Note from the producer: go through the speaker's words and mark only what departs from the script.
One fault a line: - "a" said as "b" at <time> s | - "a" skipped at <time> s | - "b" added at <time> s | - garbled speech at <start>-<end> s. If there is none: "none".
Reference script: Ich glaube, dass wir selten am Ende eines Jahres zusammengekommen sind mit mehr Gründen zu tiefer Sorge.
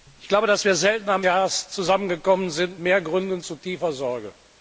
- "Ende eines" skipped at 1.2 s
- "mit" skipped at 2.8 s